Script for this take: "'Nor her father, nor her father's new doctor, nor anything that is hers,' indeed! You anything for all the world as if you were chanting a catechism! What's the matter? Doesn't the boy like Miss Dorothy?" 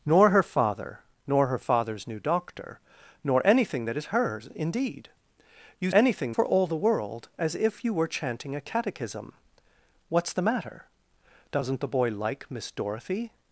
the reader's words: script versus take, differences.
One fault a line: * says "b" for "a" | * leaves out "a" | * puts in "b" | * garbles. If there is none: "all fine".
all fine